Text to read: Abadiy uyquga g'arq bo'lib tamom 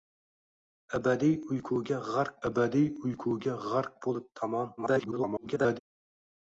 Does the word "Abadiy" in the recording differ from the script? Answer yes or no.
no